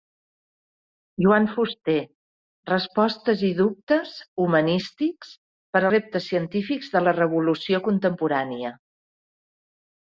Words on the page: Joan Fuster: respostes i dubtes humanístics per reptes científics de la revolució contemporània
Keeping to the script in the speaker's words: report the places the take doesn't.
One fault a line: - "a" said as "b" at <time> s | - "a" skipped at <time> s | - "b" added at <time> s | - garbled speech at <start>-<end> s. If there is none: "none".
none